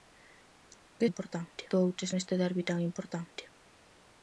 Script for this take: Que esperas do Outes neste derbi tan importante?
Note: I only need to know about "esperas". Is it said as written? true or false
false